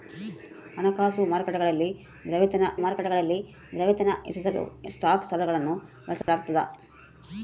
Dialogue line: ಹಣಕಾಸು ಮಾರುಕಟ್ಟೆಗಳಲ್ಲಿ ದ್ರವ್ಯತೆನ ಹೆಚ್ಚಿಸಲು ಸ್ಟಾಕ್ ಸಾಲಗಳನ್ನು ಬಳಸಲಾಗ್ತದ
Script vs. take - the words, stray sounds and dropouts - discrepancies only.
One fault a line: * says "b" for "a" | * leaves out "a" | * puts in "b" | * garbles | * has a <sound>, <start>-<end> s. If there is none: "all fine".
* puts in "ಮಾರುಕಟ್ಟೆಗಳಲ್ಲಿ ದ್ರವ್ಯತೆನ"
* has a dropout, 6.2-6.3 s